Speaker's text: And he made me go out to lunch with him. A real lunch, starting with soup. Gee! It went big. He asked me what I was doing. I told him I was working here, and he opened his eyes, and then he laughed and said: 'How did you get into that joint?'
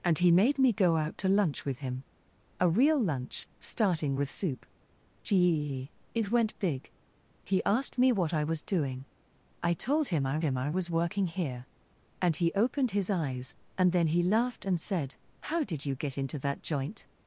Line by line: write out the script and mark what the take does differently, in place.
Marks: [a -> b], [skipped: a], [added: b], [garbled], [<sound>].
And he made me go out to lunch with him. A real lunch, starting with soup. Gee! It went big. He asked me what I was doing. I told him I [added: him I] was working here, and he opened his eyes, and then he laughed and said: 'How did you get into that joint?'